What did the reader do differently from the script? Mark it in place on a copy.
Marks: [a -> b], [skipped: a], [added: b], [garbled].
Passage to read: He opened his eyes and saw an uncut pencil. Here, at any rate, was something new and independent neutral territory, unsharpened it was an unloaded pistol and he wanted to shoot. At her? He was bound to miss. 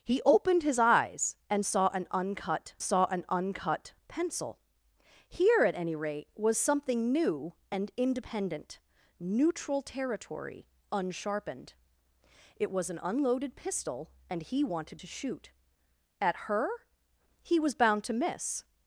He opened his eyes and saw an uncut [added: saw an uncut] pencil. Here, at any rate, was something new and independent neutral territory, unsharpened it was an unloaded pistol and he wanted to shoot. At her? He was bound to miss.